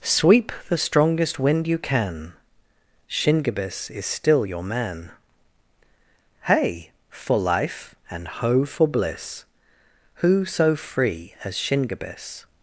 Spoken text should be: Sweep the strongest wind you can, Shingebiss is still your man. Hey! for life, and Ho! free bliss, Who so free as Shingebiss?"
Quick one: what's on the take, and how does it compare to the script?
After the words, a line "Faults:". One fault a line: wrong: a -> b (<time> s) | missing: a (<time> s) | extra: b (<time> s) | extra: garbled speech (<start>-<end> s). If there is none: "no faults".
Sweep the strongest wind you can, Shingebiss is still your man. Hey! for life, and Ho! for bliss, Who so free as Shingebiss?"
Faults:
wrong: free -> for (8.6 s)